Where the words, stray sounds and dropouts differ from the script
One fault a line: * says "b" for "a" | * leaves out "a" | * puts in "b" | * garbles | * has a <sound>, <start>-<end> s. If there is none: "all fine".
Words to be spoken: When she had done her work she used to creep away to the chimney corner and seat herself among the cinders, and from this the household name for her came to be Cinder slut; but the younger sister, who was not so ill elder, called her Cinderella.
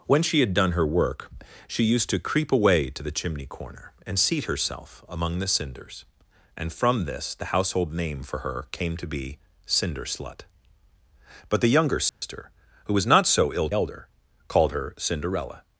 * has a dropout, 12.1-12.2 s